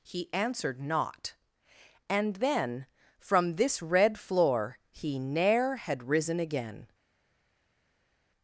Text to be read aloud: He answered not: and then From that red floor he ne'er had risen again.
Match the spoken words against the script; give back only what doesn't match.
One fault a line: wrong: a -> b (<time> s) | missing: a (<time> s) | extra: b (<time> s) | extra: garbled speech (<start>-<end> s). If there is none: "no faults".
wrong: that -> this (3.5 s)